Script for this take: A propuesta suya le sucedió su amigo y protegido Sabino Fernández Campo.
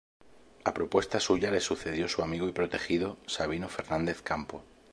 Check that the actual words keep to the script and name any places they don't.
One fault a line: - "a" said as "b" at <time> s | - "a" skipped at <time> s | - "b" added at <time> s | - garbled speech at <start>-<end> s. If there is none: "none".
none